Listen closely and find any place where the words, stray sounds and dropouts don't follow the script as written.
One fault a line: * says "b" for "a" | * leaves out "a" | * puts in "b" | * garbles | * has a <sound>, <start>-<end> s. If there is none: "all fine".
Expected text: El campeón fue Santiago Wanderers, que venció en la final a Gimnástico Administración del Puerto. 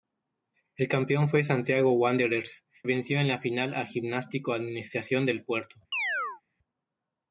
* leaves out "que"
* has a chirp, 5.9-6.4 s